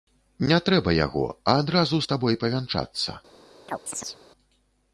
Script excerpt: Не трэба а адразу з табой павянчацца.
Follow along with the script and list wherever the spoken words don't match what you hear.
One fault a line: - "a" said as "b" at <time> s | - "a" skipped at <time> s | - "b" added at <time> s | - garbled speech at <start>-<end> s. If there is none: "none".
- "яго" added at 1.0 s